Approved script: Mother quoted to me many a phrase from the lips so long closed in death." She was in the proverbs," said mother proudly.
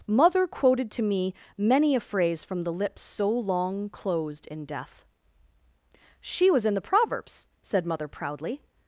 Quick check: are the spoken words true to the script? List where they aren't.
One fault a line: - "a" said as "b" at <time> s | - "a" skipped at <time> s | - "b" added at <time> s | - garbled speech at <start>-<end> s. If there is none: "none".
none